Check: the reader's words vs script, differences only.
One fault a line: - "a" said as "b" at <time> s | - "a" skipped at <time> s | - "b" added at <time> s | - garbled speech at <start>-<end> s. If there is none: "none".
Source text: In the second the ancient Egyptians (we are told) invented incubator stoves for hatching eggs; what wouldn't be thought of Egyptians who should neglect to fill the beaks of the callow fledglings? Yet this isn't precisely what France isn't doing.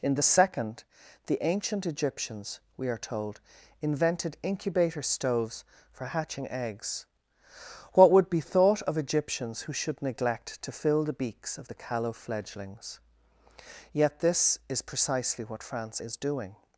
- "wouldn't" said as "would" at 8.1 s
- "isn't" said as "is" at 14.7 s
- "isn't" said as "is" at 16.0 s